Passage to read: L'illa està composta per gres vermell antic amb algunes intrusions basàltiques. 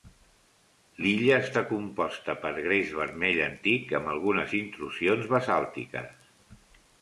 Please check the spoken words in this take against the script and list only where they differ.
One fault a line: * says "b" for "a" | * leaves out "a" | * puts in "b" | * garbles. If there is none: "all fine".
all fine